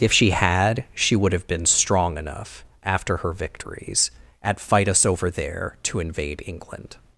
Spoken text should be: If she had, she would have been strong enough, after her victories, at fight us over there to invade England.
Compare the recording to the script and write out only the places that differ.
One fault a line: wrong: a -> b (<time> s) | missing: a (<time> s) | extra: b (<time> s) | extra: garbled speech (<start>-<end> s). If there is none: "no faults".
no faults